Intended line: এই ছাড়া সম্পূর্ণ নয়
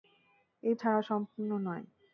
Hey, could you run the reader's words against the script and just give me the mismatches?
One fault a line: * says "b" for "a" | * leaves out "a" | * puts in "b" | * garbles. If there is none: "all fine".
all fine